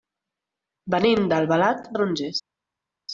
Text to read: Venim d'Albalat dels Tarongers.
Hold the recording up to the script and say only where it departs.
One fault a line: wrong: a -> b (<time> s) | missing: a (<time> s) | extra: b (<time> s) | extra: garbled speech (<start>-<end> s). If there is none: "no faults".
missing: dels (1.9 s)